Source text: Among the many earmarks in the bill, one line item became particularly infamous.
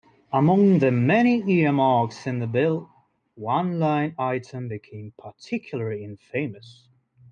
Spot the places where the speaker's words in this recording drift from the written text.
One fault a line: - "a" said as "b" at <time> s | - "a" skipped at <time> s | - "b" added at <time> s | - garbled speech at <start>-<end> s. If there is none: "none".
none